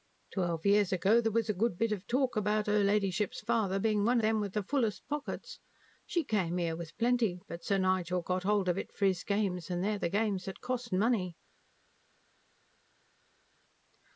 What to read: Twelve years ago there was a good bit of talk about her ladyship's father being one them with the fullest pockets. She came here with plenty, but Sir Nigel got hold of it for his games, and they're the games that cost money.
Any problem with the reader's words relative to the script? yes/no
no